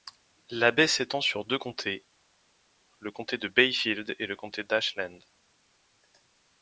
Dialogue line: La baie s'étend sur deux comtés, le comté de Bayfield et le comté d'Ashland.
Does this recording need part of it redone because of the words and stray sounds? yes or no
no